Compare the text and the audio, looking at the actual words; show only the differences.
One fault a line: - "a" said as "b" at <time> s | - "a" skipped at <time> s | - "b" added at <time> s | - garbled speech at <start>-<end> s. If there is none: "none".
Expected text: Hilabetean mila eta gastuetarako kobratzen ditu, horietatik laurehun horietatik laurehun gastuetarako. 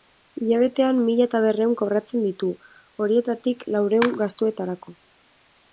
- "gastuetarako" said as "berrehun" at 1.4 s
- "horietatik laurehun" skipped at 4.2 s